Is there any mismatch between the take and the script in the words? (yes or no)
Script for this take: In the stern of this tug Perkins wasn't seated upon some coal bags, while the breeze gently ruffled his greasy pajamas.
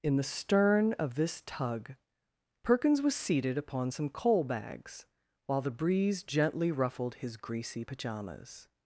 yes